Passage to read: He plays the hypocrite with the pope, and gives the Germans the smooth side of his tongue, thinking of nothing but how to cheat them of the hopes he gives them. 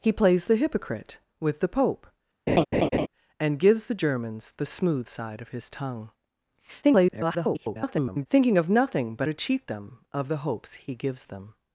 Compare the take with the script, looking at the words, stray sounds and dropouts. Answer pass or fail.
fail